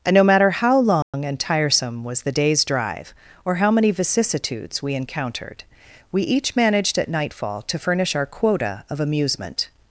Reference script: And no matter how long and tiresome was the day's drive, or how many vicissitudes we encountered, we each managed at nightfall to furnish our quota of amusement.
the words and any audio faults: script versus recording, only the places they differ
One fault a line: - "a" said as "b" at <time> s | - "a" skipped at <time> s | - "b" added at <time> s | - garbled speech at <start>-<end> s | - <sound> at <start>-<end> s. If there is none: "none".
- dropout at 1.0-1.1 s